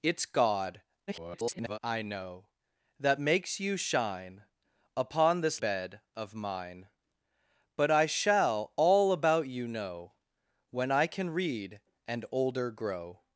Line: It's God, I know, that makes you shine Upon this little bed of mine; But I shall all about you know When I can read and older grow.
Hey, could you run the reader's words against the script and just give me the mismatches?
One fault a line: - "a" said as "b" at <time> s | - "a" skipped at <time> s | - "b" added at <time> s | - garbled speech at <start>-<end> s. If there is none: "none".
- garbled speech at 1.1-1.8 s
- "little" skipped at 5.6 s